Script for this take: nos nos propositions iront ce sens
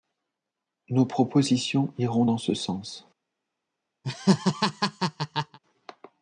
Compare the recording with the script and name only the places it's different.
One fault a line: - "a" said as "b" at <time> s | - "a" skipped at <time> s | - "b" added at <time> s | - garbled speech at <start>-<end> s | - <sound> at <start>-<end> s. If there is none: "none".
- "nos" skipped at 1.1 s
- "dans" added at 2.2 s
- laugh at 4.0-5.6 s